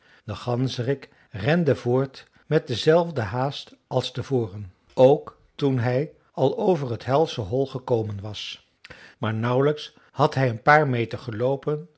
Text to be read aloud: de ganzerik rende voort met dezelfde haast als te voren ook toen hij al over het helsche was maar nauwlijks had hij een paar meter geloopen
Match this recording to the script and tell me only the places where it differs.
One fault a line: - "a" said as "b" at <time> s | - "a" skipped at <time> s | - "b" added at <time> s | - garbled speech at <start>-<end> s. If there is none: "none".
- "hol gekomen" added at 7.4 s